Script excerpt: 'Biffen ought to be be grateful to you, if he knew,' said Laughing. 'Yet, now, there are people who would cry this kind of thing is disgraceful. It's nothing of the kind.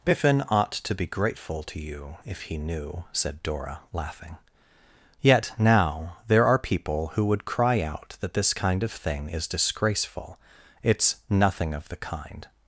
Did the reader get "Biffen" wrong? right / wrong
right